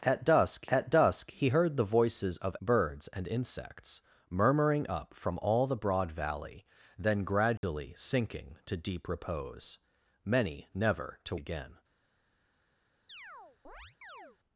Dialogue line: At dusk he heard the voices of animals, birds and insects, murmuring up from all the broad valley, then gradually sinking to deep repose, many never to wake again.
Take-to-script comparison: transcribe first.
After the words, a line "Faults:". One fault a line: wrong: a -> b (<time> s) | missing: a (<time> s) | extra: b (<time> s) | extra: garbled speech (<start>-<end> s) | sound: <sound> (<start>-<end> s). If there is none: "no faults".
At dusk at dusk he heard the voices of birds and insects, murmuring up from all the broad valley, then gradually sinking to deep repose, many never to again.
Faults:
extra: at dusk (0.7 s)
missing: animals (2.6 s)
sound: dropout (7.6-7.6 s)
missing: wake (11.4 s)
sound: chirp (13.1-14.4 s)